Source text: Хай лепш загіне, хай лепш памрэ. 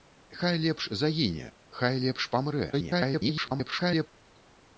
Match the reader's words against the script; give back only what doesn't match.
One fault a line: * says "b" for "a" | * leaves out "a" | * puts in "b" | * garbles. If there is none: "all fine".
* garbles